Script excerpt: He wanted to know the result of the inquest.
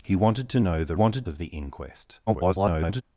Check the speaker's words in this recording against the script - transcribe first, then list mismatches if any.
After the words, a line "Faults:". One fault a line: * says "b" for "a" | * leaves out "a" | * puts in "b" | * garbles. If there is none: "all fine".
He wanted to know the wanted of the inquest. [garbled]
Faults:
* says "wanted" for "result"
* garbles